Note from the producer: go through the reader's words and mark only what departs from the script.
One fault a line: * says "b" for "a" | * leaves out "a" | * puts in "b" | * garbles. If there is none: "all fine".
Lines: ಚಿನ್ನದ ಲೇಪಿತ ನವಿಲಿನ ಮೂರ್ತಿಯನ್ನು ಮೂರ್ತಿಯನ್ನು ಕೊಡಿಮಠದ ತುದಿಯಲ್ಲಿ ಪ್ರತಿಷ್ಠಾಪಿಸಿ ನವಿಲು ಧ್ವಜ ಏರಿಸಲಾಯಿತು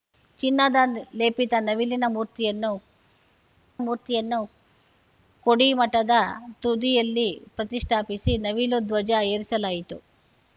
all fine